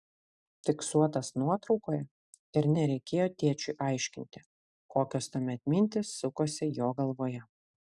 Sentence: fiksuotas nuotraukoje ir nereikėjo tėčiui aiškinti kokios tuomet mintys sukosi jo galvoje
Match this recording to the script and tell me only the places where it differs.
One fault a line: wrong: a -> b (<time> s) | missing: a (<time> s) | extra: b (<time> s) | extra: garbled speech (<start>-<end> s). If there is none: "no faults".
no faults